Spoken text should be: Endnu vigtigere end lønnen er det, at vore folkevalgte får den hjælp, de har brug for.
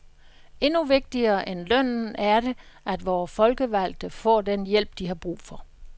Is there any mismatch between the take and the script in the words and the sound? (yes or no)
no